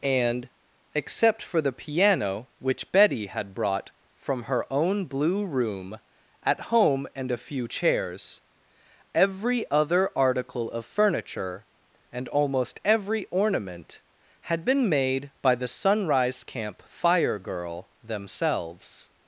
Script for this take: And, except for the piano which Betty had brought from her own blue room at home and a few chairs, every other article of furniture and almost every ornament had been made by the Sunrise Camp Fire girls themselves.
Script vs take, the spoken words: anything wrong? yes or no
yes